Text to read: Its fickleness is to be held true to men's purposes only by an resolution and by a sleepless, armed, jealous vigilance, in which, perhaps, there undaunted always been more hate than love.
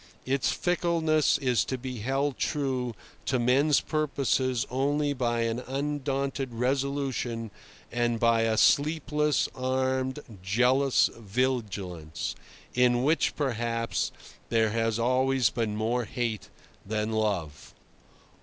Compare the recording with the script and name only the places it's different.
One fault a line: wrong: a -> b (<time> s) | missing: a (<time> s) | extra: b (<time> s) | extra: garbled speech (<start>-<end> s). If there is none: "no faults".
extra: undaunted (5.7 s)
wrong: undaunted -> has (14.7 s)